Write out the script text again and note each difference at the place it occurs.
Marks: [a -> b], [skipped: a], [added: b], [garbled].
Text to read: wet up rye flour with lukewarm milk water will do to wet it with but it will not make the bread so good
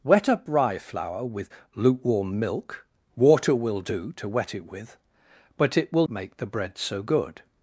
wet up rye flour with lukewarm milk water will do to wet it with but it will [skipped: not] make the bread so good